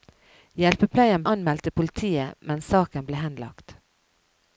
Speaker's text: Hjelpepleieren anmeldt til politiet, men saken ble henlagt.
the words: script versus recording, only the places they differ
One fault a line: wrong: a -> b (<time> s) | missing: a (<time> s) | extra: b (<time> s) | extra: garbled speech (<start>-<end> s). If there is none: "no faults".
no faults